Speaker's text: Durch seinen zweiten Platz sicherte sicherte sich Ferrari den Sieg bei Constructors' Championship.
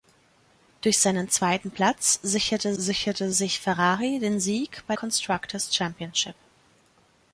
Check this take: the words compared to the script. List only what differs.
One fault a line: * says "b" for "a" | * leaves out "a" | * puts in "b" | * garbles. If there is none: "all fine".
all fine